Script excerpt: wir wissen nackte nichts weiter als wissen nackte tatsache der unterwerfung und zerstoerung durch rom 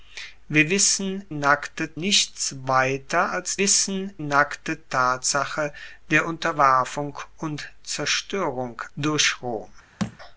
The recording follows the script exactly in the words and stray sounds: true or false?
false